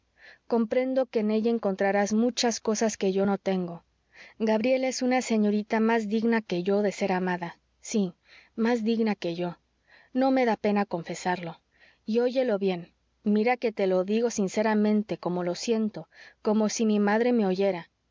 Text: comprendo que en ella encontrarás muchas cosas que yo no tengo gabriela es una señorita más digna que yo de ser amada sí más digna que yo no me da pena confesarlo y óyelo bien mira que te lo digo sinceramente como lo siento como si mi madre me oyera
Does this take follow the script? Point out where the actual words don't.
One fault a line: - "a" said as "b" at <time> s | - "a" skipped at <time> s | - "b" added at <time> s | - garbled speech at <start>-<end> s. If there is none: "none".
none